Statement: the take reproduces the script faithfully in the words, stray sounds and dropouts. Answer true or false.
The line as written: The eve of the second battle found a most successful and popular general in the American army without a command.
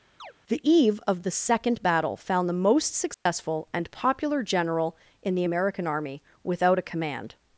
false